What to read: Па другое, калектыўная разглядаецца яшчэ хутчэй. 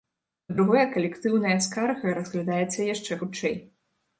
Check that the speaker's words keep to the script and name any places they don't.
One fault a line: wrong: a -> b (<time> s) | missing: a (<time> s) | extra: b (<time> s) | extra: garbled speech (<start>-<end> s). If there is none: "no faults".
extra: скарга (1.7 s)